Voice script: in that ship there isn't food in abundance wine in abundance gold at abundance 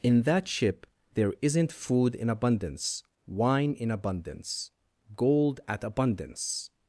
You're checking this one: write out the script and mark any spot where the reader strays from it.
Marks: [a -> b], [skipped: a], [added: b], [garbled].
in that ship there isn't food in abundance wine in abundance gold at abundance